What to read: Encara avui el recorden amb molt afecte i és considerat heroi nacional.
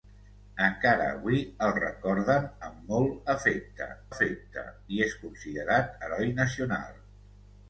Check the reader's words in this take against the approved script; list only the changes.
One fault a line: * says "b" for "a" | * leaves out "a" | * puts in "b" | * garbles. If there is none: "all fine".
* puts in "afecte"